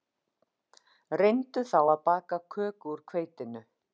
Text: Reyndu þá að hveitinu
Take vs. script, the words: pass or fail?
fail